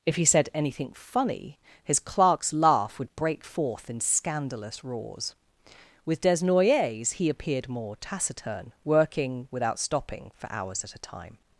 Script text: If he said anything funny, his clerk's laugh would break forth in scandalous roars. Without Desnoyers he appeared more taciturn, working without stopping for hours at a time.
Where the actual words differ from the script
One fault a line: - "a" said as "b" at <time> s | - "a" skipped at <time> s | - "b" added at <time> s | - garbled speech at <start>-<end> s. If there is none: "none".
- "Without" said as "With" at 6.1 s